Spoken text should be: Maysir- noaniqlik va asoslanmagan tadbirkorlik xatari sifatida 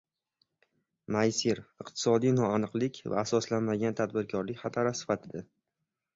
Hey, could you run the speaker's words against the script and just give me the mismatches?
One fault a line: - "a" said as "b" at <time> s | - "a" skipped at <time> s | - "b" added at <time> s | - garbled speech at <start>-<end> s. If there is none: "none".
- "iqtisodiy" added at 1.9 s